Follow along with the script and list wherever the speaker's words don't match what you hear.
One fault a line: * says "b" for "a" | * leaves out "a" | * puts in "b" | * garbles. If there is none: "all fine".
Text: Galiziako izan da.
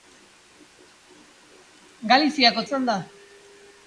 all fine